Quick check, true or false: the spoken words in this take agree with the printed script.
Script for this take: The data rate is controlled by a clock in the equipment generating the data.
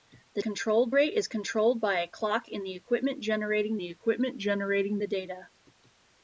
false